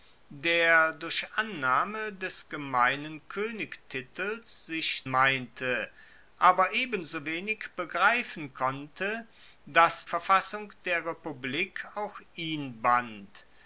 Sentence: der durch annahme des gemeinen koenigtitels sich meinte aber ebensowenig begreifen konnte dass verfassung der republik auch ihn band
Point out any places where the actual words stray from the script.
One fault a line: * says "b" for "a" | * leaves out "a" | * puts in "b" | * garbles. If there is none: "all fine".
all fine